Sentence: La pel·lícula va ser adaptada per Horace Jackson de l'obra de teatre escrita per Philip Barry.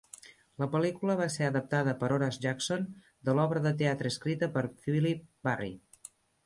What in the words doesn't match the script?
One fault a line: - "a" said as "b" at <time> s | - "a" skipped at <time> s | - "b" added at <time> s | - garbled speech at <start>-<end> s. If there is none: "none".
none